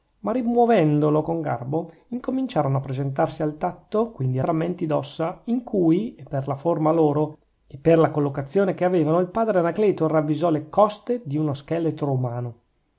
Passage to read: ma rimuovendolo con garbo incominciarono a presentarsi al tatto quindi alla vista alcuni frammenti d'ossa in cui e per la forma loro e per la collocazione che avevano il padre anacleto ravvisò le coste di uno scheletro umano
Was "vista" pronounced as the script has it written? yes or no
no